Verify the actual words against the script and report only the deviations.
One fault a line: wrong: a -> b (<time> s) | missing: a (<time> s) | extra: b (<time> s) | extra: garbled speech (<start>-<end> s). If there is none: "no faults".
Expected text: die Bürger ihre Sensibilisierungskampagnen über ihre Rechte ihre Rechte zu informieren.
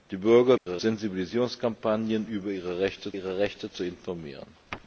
no faults